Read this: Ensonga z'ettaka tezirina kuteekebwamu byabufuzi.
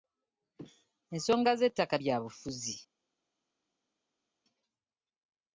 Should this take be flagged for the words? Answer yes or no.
yes